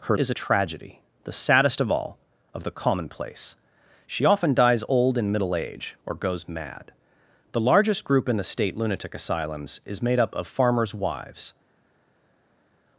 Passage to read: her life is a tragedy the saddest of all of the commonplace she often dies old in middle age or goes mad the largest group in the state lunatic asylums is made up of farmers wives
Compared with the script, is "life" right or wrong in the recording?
wrong